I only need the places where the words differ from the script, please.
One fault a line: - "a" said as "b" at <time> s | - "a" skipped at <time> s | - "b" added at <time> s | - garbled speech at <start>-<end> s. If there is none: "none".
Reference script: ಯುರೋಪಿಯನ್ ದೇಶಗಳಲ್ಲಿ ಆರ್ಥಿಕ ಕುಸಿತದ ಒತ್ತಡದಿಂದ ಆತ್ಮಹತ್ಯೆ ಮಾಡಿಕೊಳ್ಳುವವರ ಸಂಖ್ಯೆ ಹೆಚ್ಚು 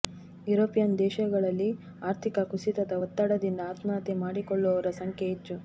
none